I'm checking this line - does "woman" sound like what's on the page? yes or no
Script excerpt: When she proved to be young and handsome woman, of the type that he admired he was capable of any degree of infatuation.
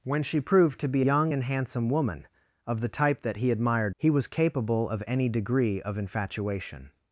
yes